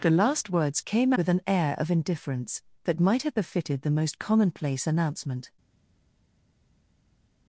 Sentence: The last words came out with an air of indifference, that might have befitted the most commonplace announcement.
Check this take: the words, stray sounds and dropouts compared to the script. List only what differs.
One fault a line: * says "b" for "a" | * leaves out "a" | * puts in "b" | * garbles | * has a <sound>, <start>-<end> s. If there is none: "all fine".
* leaves out "out"